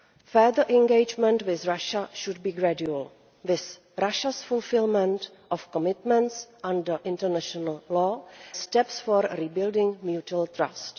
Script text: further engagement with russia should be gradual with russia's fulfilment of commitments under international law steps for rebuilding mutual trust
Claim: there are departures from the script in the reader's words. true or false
false